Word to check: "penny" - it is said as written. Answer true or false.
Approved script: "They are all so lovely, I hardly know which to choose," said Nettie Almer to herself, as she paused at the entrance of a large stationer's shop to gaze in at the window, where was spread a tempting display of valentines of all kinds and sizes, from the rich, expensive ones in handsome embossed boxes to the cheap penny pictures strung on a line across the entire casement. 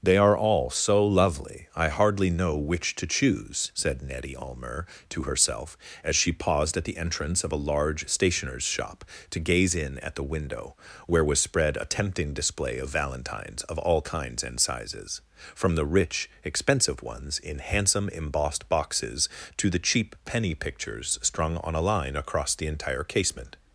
true